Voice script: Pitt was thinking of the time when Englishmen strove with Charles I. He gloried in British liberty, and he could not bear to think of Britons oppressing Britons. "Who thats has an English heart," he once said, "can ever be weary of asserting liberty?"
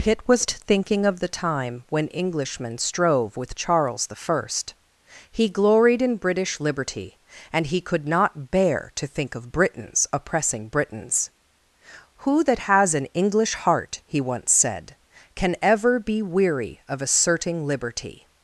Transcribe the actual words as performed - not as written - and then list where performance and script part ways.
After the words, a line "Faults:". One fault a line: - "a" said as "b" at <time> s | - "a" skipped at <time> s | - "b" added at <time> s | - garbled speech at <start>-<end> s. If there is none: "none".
Pitt was thinking of the time when Englishmen strove with Charles I. He gloried in British liberty, and he could not bear to think of Britons oppressing Britons. "Who that has an English heart," he once said, "can ever be weary of asserting liberty?"
Faults:
- "thats" said as "that" at 12.5 s